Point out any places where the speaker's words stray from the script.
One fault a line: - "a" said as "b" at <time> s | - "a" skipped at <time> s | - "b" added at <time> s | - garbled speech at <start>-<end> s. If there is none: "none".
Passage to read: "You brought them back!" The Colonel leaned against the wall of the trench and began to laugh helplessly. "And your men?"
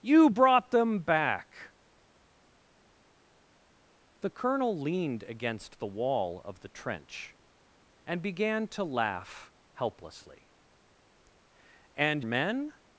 - "your" skipped at 12.2 s